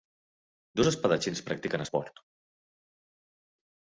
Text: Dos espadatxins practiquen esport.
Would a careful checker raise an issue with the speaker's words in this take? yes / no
no